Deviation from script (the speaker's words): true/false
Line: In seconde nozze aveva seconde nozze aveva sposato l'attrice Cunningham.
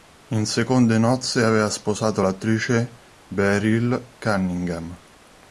true